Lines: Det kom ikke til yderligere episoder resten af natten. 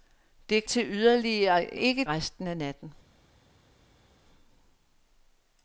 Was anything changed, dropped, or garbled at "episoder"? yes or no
yes